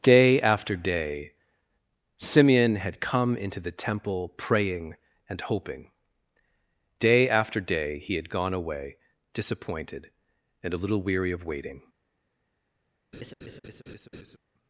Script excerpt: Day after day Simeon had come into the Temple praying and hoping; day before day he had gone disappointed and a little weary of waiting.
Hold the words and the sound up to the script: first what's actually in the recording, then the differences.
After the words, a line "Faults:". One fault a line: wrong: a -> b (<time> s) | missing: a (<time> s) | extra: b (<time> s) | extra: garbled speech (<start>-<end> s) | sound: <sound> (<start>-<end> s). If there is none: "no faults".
Day after day Simeon had come into the Temple praying and hoping; day after day he had gone away disappointed and a little weary of waiting.
Faults:
wrong: before -> after (7.3 s)
extra: away (8.5 s)
sound: laugh (13.1-14.4 s)